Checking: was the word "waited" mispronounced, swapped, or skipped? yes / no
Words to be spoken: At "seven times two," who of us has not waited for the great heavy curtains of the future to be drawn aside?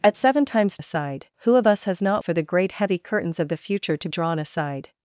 yes